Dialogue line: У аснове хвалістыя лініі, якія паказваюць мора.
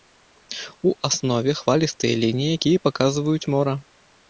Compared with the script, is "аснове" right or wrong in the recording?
right